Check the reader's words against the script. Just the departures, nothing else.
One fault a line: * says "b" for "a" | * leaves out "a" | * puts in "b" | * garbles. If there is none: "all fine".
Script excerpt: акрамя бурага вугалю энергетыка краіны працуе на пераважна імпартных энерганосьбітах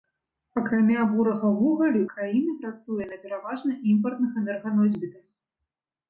* leaves out "энергетыка"